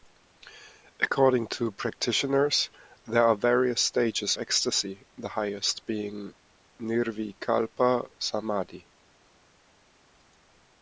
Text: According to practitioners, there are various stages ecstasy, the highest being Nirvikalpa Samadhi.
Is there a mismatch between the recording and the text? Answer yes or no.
no